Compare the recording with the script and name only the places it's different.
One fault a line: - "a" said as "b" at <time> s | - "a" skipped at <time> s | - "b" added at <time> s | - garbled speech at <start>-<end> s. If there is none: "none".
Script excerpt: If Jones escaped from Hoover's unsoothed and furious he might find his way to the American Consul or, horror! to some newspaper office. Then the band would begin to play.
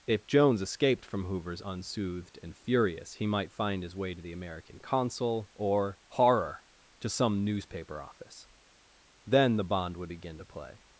- "band" said as "bond" at 9.6 s